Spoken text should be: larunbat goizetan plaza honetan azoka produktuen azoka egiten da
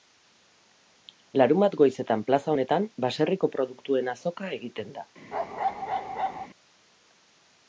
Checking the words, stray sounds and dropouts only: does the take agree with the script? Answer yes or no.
no